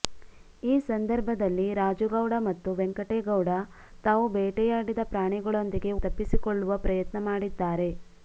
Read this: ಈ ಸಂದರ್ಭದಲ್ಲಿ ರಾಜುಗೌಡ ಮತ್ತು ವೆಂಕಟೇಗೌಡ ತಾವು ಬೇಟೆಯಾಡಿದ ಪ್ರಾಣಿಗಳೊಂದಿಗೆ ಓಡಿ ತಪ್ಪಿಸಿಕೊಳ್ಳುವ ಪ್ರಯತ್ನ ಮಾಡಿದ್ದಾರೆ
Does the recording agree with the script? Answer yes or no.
no